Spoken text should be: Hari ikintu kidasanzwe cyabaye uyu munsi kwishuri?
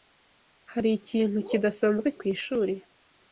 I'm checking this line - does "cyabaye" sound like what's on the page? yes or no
no